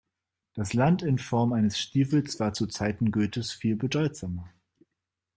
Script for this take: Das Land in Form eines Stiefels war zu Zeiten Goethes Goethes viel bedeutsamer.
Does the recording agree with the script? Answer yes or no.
no